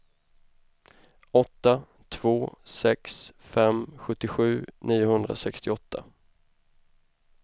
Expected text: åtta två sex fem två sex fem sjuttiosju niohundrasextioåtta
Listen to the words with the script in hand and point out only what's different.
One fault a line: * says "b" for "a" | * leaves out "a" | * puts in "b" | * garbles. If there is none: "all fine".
* leaves out "två sex fem"